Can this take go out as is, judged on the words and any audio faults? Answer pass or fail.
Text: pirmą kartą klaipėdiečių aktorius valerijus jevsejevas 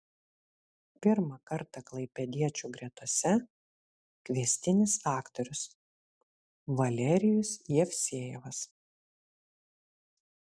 fail